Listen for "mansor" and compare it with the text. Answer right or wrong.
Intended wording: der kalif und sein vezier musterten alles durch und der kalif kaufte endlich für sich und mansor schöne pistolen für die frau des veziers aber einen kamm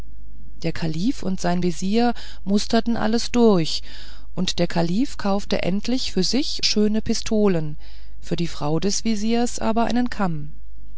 wrong